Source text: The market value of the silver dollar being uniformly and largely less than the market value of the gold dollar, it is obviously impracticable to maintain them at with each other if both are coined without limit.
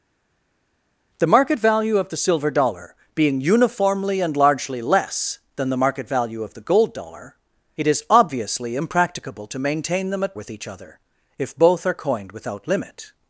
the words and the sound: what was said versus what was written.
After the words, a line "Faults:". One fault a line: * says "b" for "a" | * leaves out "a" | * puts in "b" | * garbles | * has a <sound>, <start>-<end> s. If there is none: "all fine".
The market value of the silver dollar being uniformly and largely less than the market value of the gold dollar, it is obviously impracticable to maintain them at with each other if both are coined without limit.
Faults:
all fine